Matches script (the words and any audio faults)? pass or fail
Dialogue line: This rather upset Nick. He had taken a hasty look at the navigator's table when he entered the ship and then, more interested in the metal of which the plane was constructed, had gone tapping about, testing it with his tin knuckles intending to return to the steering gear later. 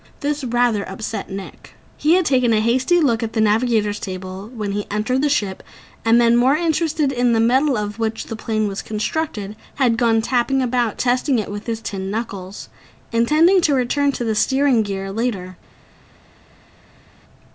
pass